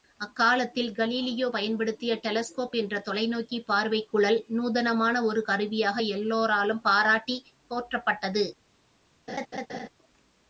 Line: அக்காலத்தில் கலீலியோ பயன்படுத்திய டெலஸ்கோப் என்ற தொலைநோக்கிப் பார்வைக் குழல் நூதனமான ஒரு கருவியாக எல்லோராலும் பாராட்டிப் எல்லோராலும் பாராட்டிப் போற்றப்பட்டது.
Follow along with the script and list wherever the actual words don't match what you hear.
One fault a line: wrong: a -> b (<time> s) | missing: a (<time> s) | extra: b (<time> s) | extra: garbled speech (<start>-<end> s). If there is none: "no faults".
missing: எல்லோராலும் பாராட்டிப் (7.5 s)